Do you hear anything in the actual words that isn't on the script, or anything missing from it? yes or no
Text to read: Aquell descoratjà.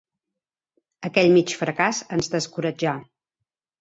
yes